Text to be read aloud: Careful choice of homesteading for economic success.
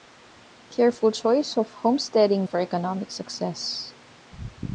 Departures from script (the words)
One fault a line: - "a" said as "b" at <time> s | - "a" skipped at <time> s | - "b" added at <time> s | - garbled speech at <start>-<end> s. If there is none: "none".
none